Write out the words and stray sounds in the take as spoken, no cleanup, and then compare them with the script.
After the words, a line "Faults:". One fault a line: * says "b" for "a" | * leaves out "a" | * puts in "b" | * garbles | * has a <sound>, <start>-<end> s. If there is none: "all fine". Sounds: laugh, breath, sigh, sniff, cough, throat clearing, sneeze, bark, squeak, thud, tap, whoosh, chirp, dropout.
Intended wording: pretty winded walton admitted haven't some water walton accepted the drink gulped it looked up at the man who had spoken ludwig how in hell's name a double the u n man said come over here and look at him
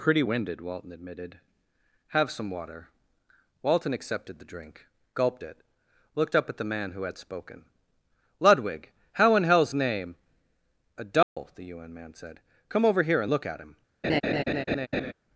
pretty winded walton admitted have some water walton accepted the drink gulped it looked up at the man who had spoken ludwig how in hell's name a double the u n man said come over here and look at him
Faults:
* says "have" for "haven't"
* has a dropout, 11.2-11.4 s
* has a laugh, 14.0-15.1 s